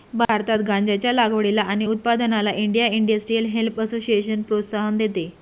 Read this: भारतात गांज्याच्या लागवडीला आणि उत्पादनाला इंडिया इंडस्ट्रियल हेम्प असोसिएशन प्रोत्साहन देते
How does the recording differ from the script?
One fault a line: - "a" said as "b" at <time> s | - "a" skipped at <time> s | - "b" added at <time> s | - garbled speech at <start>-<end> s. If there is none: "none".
none